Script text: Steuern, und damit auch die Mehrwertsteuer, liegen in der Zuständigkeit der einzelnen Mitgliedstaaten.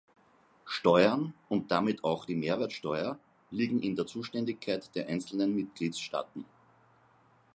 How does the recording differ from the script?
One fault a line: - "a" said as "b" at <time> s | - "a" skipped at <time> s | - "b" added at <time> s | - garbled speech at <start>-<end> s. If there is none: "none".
none